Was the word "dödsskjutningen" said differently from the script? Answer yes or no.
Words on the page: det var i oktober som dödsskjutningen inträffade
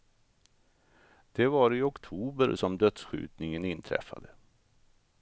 no